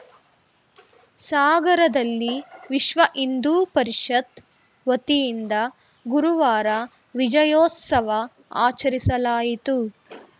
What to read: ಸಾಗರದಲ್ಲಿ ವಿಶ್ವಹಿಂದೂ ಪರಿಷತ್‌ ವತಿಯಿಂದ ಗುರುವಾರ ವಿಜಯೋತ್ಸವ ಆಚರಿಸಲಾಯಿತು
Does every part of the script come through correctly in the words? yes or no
yes